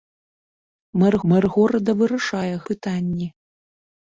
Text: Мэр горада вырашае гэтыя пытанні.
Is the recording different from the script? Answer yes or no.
yes